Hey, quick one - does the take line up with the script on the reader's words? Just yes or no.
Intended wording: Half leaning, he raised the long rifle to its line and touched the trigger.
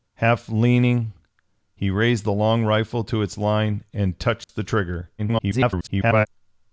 no